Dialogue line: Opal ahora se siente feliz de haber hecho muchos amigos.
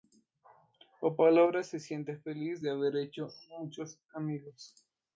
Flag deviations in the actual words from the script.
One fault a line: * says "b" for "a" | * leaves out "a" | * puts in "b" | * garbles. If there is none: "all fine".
all fine